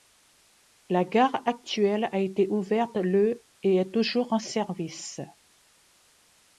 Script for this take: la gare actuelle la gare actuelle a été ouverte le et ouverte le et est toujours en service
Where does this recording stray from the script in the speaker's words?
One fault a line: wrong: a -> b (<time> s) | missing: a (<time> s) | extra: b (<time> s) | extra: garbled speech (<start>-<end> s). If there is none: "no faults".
missing: la gare actuelle (2.1 s)
missing: ouverte le et (3.8 s)